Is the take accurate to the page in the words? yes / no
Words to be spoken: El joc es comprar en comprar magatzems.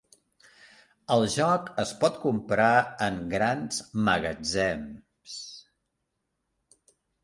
no